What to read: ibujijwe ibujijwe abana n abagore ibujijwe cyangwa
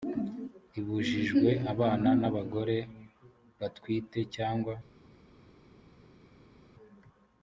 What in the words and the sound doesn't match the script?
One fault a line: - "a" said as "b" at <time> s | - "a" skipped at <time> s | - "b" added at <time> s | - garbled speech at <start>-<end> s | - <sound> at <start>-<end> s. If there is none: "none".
- "ibujijwe" skipped at 1.5 s
- "ibujijwe" said as "batwite" at 3.6 s